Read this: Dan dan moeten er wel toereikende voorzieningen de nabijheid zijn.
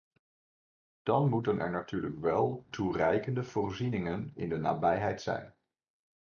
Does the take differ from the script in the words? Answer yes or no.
yes